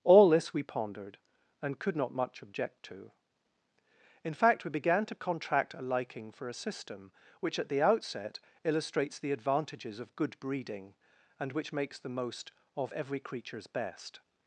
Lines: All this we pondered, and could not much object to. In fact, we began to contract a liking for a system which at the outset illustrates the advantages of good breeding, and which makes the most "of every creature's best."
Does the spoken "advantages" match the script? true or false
true